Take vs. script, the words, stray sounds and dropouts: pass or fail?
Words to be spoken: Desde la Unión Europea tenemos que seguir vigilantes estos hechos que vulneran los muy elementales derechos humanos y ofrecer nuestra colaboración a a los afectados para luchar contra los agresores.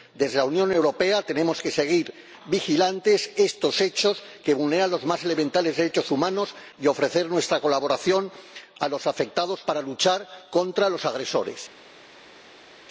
fail